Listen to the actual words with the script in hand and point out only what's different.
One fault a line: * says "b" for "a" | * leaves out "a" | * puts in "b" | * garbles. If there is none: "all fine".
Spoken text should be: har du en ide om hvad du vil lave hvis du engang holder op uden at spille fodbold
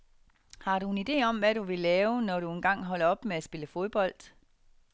* says "når" for "hvis"
* says "med" for "uden"